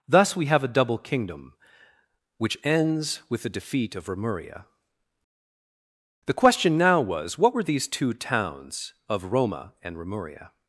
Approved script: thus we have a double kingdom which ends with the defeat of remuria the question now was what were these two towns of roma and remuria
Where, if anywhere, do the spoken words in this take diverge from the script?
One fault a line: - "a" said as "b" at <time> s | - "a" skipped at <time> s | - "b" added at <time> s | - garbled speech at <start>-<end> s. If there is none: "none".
none